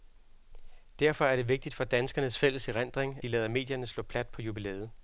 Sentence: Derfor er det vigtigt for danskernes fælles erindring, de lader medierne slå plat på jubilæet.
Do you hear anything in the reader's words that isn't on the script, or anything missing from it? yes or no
no